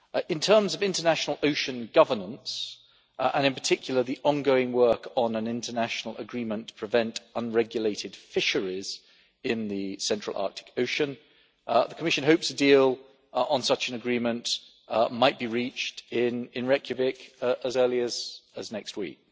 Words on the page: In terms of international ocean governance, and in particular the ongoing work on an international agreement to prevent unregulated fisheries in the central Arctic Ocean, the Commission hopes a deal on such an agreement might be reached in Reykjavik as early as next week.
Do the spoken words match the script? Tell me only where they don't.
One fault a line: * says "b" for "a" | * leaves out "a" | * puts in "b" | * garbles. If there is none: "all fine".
all fine